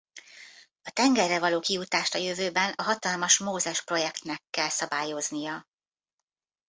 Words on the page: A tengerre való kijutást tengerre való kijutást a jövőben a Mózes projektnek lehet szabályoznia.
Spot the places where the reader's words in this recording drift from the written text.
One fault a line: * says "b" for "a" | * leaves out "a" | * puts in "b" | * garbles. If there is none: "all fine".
* leaves out "tengerre való kijutást"
* puts in "hatalmas"
* says "kell" for "lehet"